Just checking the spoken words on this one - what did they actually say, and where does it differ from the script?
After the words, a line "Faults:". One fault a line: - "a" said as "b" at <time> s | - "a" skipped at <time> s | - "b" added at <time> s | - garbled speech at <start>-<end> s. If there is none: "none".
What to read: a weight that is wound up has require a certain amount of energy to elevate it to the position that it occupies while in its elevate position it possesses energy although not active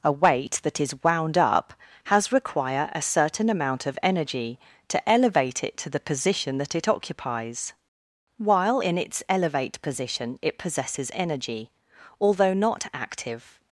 a weight that is wound up has require a certain amount of energy to elevate it to the position that it occupies while in its elevate position it possesses energy although not active
Faults:
none